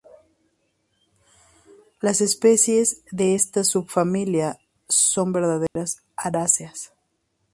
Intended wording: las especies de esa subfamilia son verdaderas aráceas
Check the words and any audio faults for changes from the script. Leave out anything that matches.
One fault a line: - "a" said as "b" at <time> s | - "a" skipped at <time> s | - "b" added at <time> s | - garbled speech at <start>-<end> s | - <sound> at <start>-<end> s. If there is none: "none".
- "esa" said as "esta" at 3.3 s
- dropout at 5.7-5.8 s